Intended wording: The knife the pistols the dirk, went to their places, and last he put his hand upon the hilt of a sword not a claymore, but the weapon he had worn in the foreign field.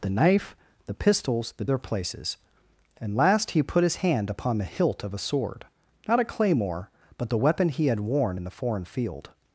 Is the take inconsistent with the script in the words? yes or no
yes